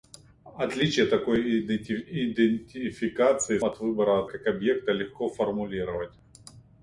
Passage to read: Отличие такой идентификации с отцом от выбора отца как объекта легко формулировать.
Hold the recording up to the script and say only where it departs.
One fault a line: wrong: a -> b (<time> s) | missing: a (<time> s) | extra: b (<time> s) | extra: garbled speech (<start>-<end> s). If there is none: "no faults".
missing: с отцом (3.6 s)
missing: отца (4.3 s)